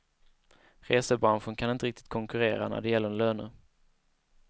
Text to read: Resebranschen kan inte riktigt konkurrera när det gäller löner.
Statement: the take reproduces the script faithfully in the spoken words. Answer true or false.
true